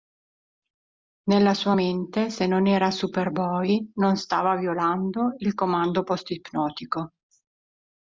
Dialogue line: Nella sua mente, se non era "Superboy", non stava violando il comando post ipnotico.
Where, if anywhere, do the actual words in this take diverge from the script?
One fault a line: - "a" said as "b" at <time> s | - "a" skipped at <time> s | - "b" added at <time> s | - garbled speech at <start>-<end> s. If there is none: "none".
none